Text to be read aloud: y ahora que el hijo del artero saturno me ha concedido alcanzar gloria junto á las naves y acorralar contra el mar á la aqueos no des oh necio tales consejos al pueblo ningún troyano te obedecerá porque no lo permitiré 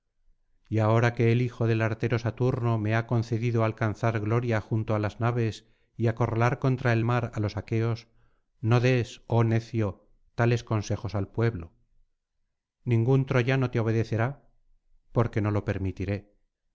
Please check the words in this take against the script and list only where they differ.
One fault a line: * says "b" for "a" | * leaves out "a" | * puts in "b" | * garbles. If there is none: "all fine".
* says "los" for "la"